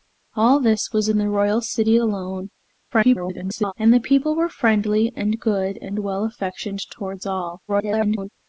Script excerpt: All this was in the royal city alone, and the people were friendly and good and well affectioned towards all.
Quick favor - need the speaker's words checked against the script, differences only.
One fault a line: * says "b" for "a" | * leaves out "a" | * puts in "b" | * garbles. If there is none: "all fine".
* garbles
* garbles